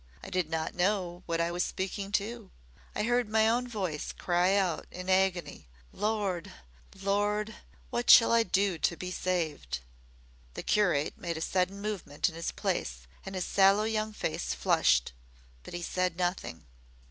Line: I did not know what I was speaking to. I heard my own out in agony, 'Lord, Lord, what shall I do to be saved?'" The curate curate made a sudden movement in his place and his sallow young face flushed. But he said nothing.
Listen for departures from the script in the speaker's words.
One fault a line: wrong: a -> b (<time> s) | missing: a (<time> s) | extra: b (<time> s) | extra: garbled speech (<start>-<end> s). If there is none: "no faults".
extra: voice cry (3.7 s)
missing: curate (11.2 s)